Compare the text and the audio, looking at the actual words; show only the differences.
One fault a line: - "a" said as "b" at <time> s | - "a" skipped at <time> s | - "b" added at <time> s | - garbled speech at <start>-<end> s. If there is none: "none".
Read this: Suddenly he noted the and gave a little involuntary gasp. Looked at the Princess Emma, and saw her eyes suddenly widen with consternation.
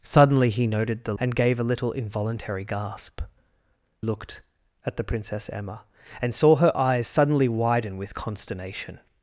none